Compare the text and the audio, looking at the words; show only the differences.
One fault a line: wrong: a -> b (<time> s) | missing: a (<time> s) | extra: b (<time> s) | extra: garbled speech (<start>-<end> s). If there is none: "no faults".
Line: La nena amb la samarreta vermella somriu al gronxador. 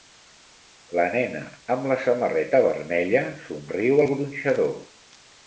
no faults